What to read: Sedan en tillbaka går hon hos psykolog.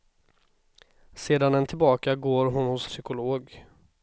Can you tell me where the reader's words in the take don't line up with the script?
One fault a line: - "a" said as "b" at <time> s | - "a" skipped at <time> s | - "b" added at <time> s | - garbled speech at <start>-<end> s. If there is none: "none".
none